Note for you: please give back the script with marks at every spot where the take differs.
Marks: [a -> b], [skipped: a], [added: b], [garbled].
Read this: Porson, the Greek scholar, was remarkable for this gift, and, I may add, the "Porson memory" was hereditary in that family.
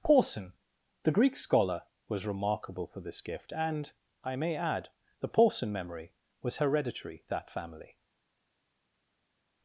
Porson, the Greek scholar, was remarkable for this gift, and, I may add, the "Porson memory" was hereditary [skipped: in] that family.